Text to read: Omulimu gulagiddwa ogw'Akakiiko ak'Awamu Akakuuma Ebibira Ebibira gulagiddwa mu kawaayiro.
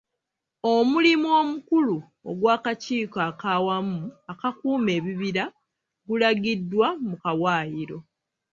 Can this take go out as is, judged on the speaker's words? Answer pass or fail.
fail